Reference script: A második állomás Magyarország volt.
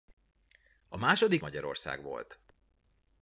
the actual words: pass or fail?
fail